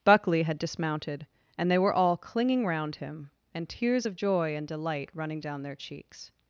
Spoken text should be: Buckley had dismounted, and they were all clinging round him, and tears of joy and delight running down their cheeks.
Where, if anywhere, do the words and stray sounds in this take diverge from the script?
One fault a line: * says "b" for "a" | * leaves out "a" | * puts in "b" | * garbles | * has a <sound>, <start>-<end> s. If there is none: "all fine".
all fine